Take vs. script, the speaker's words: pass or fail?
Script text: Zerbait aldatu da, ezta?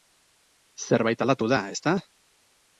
pass